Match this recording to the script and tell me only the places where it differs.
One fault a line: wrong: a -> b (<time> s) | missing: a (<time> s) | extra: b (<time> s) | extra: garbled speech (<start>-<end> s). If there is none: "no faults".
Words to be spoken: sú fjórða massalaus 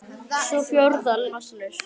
no faults